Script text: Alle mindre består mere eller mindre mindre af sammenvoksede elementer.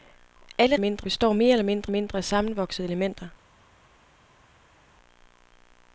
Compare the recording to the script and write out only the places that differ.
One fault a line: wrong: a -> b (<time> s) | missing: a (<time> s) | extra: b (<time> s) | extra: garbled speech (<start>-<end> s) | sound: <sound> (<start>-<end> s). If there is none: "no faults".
no faults